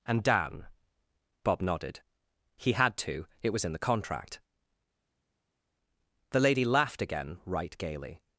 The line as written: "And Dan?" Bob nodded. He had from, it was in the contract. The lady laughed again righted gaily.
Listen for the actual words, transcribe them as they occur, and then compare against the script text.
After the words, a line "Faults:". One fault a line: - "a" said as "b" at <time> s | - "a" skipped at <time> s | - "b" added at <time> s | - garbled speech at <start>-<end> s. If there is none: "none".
"And Dan?" Bob nodded. He had to, it was in the contract. The lady laughed again right gaily.
Faults:
- "from" said as "to" at 3.0 s
- "righted" said as "right" at 7.4 s